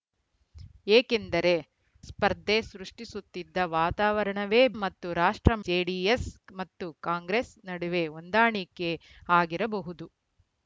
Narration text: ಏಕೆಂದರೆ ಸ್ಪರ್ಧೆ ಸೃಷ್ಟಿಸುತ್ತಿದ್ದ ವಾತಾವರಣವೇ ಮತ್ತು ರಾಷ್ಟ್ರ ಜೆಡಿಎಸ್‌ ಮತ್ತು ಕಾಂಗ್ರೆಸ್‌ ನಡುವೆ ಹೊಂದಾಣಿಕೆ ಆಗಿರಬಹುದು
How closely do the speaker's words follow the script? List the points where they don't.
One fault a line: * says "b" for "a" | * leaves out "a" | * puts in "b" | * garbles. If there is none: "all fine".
all fine